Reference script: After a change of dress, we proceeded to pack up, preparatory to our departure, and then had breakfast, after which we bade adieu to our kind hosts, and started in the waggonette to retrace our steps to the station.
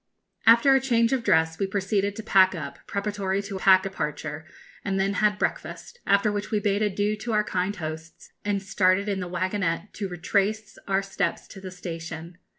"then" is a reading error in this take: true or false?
false